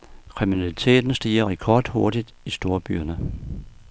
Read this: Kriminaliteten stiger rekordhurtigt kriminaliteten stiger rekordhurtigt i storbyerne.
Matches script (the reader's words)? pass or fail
fail